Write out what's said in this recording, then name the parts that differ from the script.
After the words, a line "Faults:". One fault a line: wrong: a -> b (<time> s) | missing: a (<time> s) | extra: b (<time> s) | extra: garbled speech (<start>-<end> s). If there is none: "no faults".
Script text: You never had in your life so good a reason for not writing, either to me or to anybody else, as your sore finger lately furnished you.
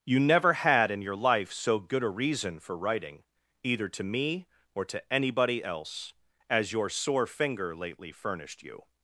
You never had in your life so good a reason for writing, either to me or to anybody else, as your sore finger lately furnished you.
Faults:
missing: not (2.8 s)